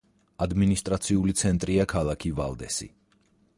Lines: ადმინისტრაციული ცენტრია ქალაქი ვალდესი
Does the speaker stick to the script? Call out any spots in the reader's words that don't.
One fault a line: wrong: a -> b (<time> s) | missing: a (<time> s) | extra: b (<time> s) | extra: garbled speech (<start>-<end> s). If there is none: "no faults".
no faults